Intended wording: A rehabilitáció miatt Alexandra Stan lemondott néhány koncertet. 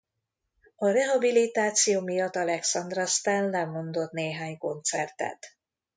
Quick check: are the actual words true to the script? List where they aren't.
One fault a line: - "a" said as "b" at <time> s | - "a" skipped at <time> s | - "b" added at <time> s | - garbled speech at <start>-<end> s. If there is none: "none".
none